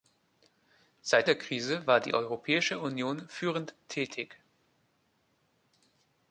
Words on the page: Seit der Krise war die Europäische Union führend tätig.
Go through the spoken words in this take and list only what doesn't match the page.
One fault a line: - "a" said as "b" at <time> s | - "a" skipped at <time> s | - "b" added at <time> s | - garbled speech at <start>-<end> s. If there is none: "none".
none